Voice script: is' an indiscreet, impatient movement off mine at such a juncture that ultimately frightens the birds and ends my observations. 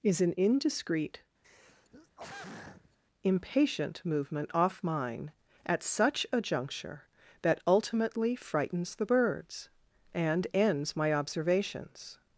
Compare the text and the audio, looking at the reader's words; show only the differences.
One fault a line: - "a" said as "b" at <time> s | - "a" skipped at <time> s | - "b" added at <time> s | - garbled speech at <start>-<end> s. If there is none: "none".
none